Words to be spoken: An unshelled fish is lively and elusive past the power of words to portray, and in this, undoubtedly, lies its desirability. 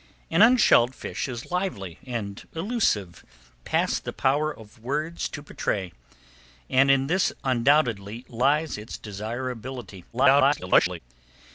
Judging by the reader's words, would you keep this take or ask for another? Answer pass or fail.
fail